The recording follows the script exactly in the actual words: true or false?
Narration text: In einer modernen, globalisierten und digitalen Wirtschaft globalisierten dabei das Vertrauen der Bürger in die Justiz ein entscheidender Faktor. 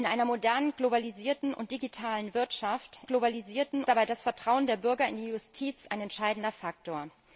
true